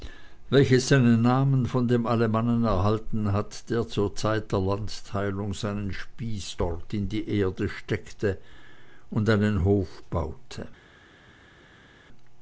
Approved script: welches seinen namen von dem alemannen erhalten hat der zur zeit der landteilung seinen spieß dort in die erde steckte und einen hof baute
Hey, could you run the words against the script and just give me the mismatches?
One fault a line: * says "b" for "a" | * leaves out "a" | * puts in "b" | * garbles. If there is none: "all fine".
all fine